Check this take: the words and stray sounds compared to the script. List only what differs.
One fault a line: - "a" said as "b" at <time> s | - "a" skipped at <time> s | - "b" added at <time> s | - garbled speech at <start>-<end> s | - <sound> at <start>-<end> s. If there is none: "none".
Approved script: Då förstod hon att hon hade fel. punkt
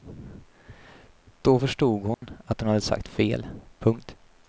- dropout at 2.1-2.2 s
- "sagt" added at 2.8 s